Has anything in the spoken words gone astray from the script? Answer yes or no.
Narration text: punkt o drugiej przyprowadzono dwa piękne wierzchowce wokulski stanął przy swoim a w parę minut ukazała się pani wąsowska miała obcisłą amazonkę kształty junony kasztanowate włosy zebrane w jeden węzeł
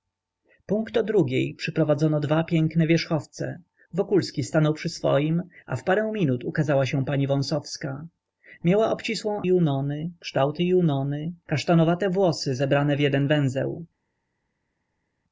yes